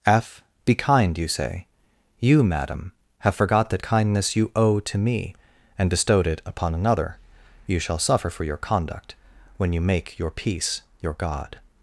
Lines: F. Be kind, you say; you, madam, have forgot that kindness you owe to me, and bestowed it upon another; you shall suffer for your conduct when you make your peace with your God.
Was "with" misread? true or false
true